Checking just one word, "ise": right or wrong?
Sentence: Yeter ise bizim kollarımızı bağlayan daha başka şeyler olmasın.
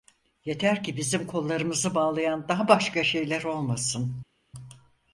wrong